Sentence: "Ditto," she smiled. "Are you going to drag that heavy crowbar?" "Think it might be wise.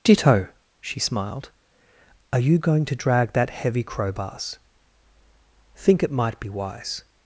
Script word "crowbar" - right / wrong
wrong